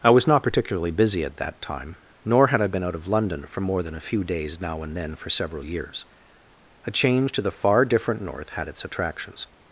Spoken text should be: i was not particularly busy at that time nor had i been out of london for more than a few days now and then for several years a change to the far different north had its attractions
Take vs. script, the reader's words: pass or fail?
pass